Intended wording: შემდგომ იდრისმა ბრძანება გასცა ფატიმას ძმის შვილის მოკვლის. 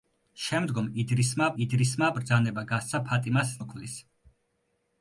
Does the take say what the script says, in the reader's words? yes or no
no